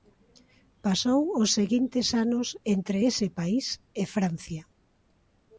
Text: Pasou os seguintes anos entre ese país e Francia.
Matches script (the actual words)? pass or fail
pass